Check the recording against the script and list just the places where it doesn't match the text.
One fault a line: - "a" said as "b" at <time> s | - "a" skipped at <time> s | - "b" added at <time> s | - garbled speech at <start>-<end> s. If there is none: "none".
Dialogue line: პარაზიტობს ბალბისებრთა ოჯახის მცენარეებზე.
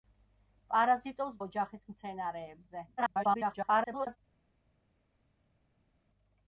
- "ბალბისებრთა" skipped at 1.4 s
- garbled speech at 3.0-4.2 s